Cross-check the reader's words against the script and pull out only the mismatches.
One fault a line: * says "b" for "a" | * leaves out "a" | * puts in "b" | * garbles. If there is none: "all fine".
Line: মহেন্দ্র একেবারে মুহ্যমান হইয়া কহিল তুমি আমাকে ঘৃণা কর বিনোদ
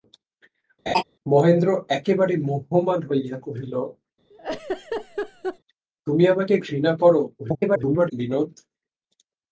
* garbles